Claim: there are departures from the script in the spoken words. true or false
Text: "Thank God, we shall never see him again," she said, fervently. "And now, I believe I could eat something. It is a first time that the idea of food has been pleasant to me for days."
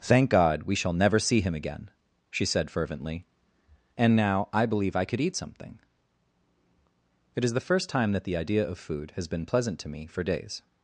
true